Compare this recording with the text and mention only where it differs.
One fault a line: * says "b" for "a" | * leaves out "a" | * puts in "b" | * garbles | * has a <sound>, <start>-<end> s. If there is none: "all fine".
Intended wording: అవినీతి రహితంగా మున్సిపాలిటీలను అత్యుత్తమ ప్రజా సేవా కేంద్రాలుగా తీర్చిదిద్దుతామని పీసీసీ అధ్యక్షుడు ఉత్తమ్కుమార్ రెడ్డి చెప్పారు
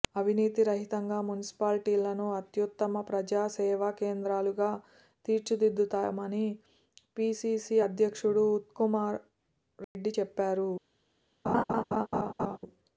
* has a dropout, 9.8-10.0 s
* has a laugh, 11.4-12.6 s